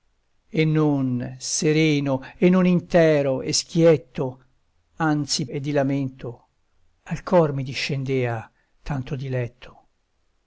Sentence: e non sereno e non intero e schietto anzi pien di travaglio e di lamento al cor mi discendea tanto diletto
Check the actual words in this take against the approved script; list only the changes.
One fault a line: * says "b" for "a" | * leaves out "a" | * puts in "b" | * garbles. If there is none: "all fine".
* leaves out "pien di travaglio"